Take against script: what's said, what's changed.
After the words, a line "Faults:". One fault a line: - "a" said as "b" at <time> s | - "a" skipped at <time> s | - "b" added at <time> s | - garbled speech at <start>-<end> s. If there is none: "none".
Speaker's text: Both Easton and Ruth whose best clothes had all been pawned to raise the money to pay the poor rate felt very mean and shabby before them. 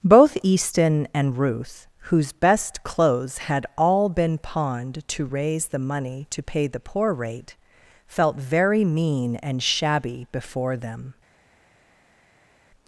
Both Easton and Ruth whose best clothes had all been pawned to raise the money to pay the poor rate felt very mean and shabby before them.
Faults:
none